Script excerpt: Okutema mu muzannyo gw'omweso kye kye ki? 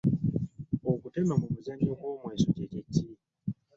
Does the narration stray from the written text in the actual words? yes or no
no